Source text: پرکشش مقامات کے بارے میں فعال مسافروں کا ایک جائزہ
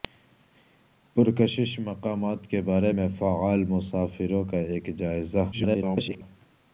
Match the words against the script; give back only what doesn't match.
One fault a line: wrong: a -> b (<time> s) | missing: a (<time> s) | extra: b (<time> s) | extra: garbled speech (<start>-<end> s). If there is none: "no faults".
extra: garbled speech (5.5-6.2 s)